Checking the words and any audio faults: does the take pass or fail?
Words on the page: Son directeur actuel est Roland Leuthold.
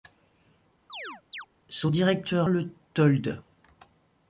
fail